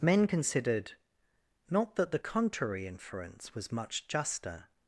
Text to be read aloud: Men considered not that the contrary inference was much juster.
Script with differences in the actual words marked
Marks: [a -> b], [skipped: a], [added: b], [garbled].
Men considered not that the contrary inference was much juster.